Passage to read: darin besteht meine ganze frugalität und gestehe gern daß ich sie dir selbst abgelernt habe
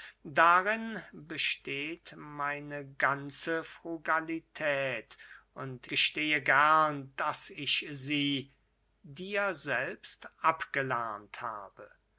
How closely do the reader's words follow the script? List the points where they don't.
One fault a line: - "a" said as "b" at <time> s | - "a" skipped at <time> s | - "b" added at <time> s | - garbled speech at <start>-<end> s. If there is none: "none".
none